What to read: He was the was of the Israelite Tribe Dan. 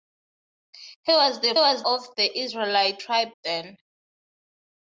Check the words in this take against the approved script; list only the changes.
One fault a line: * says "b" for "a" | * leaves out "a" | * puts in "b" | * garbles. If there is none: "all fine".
all fine